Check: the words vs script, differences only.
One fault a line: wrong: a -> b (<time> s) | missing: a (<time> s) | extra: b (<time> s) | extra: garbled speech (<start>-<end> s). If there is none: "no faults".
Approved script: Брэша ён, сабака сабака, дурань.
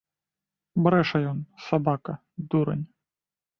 missing: сабака (2.1 s)